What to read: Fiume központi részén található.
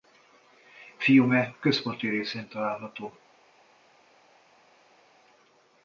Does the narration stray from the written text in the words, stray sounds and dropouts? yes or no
no